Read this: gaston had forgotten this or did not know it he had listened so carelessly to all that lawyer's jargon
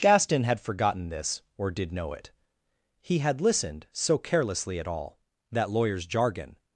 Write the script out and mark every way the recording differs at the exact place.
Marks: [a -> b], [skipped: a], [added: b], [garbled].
gaston had forgotten this or did [skipped: not] know it he had listened so carelessly [to -> at] all that lawyer's jargon